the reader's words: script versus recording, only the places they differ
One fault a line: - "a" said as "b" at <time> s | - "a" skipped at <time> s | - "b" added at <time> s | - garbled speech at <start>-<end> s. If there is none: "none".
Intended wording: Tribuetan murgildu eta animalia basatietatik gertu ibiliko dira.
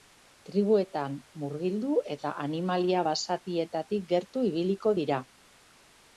none